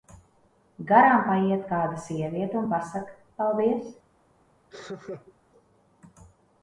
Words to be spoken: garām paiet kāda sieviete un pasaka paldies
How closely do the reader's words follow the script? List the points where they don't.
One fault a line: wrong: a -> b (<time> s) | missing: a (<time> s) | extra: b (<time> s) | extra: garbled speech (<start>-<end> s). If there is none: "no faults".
no faults